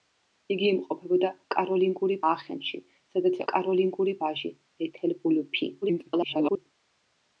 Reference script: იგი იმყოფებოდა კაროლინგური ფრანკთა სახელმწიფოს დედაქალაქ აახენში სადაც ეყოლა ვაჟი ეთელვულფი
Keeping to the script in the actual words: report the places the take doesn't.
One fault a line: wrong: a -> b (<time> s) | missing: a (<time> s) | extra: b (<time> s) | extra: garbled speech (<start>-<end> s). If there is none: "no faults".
missing: ფრანკთა სახელმწიფოს დედაქალაქ (2.2 s)
wrong: ეყოლა -> კაროლინგური (3.5 s)
extra: garbled speech (5.8-6.7 s)